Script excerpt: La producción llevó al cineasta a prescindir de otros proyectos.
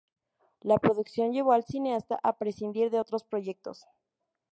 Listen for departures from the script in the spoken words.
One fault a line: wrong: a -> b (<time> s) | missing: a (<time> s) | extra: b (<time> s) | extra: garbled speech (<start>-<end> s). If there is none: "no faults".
no faults